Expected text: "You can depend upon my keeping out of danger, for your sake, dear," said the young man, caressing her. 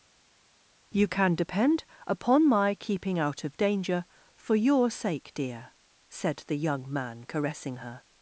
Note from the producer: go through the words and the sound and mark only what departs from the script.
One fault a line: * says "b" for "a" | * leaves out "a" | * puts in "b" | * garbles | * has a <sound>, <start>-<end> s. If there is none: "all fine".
all fine